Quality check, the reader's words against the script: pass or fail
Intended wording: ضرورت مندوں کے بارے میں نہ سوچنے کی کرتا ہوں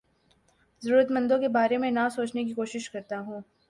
fail